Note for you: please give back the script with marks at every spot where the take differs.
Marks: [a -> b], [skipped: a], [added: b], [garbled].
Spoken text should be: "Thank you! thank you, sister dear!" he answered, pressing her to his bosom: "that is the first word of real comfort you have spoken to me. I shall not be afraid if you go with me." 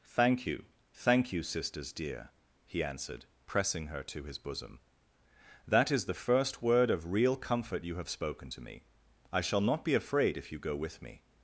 "Thank you! thank you, [sister -> sisters] dear!" he answered, pressing her to his bosom: "that is the first word of real comfort you have spoken to me. I shall not be afraid if you go with me."